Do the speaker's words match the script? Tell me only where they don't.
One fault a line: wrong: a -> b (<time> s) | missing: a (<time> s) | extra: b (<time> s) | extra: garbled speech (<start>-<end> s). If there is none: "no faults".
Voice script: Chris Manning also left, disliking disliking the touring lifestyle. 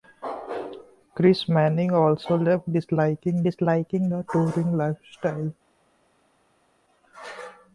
no faults